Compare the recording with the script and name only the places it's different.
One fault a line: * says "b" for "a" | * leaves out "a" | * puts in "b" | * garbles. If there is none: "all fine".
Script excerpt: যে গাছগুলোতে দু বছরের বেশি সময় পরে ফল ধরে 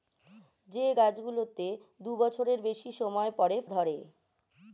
* leaves out "ফল"